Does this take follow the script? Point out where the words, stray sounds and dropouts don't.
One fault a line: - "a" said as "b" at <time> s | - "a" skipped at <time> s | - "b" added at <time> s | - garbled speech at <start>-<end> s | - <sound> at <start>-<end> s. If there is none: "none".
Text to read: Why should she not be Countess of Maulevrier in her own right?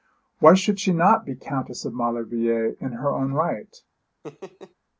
- laugh at 4.2-4.7 s